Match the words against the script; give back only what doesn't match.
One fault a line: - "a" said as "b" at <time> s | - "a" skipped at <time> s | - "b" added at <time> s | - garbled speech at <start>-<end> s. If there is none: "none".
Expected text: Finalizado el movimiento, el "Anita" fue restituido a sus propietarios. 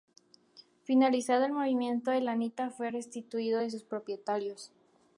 none